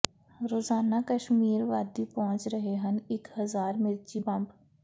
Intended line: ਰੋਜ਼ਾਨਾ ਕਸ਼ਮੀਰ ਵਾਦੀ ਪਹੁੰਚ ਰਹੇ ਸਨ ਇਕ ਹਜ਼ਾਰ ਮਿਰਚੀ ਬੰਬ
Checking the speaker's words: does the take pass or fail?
fail